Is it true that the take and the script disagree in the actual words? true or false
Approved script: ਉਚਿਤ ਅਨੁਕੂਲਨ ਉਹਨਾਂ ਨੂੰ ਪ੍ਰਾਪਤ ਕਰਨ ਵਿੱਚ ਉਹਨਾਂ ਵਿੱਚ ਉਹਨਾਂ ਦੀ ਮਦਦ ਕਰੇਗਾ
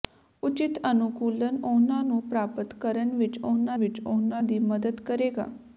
false